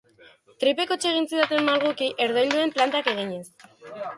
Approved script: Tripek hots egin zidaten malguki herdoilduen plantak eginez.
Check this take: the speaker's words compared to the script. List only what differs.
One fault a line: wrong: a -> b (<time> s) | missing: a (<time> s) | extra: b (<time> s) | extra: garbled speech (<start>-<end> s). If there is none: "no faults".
no faults